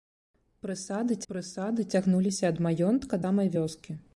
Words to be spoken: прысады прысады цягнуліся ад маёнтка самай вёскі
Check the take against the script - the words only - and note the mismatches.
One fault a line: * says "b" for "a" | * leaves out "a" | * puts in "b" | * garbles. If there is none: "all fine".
all fine